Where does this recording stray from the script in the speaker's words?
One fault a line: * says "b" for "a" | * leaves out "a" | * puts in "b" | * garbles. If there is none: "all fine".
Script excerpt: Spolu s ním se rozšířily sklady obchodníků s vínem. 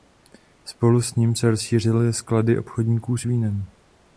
all fine